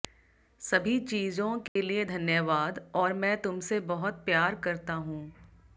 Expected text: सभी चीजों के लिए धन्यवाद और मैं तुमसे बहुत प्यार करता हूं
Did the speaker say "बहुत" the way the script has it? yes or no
yes